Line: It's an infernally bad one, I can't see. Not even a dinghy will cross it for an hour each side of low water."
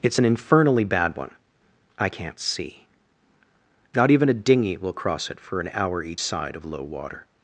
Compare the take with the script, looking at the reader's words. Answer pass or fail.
pass